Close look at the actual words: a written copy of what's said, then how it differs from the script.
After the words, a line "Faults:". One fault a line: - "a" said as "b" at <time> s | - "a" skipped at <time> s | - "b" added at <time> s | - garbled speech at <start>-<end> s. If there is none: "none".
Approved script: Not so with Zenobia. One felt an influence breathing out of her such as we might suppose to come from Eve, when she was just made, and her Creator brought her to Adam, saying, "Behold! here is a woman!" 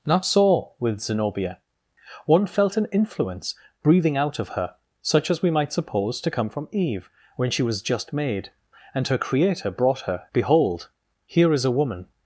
Not so with Zenobia. One felt an influence breathing out of her such as we might suppose to come from Eve, when she was just made, and her Creator brought her "Behold! here is a woman!"
Faults:
- "to Adam saying" skipped at 10.2 s